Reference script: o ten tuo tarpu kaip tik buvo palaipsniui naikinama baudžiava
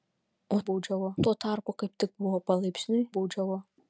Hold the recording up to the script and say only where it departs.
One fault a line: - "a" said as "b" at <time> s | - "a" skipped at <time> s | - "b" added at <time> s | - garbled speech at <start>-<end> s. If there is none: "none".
- "ten" said as "baudžiava" at 0.7 s
- "naikinama" skipped at 3.0 s